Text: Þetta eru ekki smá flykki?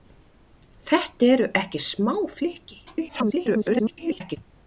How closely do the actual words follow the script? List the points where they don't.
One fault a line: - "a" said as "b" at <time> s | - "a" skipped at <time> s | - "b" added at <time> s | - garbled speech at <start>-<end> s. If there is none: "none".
- garbled speech at 2.9-4.4 s